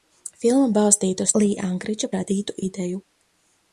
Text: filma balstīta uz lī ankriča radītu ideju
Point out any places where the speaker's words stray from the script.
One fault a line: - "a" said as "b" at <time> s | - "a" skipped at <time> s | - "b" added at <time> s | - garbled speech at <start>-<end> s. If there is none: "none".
none